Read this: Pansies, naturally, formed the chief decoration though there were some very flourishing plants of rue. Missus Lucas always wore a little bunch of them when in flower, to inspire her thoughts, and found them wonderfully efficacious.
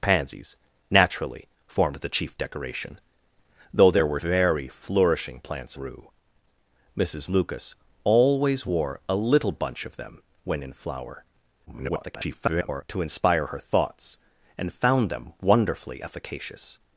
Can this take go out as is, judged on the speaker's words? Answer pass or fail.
fail